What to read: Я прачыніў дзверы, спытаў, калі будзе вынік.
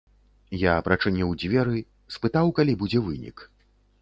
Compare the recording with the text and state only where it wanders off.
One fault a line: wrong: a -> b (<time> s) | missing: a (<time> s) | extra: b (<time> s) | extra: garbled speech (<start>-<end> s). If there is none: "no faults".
no faults